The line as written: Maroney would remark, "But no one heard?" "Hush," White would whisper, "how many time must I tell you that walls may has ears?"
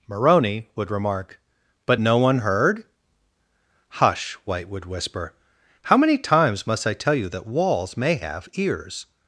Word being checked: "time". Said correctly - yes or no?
no